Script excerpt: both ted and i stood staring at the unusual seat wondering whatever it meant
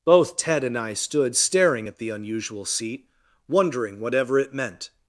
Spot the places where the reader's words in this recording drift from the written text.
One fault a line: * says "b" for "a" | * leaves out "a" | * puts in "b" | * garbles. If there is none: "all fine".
all fine